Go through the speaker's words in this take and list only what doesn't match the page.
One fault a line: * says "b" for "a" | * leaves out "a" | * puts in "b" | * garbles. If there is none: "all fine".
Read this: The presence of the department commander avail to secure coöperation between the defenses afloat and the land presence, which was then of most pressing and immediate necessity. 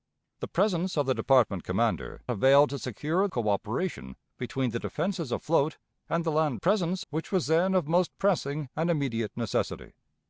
all fine